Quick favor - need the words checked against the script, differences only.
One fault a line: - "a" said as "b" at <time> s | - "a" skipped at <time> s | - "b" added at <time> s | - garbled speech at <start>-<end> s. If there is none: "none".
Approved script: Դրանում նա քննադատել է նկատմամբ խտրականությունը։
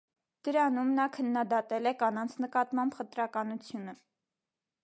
- "կանանց" added at 2.0 s